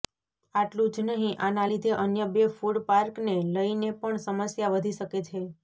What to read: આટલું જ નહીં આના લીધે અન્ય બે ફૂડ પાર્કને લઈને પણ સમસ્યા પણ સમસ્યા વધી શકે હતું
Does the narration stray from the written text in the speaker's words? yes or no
yes